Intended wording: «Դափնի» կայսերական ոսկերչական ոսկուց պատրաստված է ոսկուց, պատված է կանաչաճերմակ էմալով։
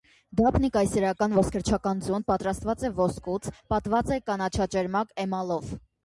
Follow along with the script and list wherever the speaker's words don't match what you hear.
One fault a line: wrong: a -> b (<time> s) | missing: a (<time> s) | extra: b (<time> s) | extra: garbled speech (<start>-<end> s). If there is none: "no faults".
wrong: ոսկուց -> ձուն (2.1 s)